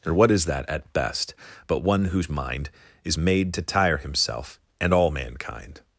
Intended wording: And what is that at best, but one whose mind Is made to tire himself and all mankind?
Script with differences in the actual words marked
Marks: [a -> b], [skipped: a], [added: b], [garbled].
[And -> Or] what is that at best, but one whose mind Is made to tire himself and all mankind?